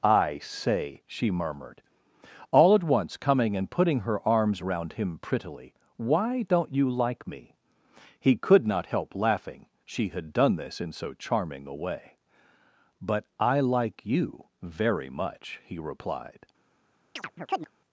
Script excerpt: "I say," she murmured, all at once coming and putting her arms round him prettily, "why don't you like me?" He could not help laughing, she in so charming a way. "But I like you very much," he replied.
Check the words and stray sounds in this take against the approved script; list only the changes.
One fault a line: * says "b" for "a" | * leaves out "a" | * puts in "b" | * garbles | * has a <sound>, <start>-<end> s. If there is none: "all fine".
* puts in "had done this"
* has a chirp, 17.2-17.7 s